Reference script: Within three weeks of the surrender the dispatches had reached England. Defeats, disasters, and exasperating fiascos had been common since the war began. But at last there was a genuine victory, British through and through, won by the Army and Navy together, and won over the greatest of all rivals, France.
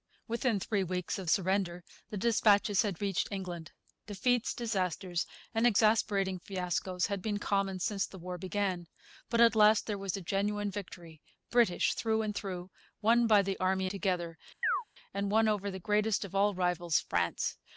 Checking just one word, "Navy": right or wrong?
wrong